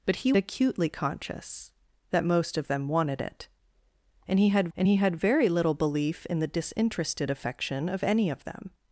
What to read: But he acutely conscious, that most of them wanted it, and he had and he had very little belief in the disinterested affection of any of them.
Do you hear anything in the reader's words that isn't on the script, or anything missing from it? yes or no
no